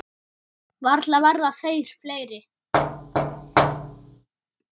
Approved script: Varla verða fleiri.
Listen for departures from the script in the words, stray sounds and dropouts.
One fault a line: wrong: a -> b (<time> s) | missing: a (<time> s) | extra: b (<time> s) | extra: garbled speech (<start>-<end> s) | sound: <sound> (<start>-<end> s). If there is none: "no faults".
extra: þeir (1.6 s)
sound: thud (2.7-4.3 s)